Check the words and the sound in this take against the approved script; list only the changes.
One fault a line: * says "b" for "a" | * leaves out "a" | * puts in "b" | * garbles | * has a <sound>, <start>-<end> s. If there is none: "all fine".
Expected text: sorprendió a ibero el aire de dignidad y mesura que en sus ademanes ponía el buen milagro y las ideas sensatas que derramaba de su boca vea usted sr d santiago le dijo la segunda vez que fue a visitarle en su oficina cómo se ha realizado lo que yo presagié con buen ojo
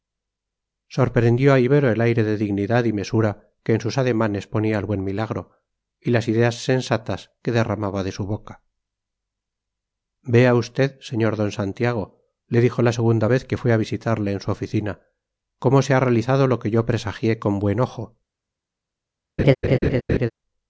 * has a laugh, 19.4-20.3 s